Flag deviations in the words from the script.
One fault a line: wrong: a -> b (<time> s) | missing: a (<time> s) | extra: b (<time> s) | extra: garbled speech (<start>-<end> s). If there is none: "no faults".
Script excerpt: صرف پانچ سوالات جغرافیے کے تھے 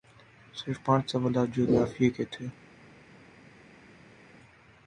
no faults